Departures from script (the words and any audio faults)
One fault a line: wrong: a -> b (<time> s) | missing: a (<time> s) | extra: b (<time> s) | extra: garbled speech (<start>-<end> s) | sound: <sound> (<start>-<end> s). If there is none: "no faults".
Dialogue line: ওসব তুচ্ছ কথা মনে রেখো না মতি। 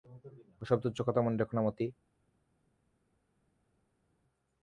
no faults